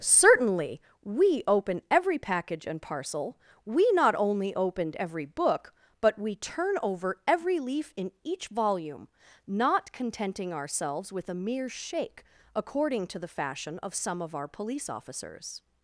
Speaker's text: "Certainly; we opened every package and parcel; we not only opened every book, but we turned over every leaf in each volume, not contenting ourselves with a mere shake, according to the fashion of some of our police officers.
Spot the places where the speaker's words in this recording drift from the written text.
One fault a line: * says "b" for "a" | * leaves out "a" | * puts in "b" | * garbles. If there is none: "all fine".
* says "open" for "opened"
* says "turn" for "turned"